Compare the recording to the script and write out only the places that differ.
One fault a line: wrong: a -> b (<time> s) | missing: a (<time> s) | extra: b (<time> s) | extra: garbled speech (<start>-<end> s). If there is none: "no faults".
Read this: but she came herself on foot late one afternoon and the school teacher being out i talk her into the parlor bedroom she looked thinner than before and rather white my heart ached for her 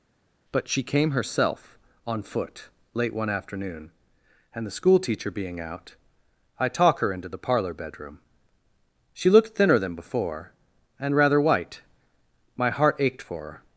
no faults